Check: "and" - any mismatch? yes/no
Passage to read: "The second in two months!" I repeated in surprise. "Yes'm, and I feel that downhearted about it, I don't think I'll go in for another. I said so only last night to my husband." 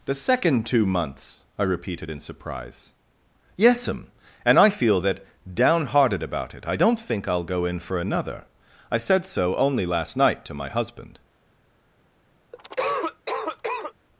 no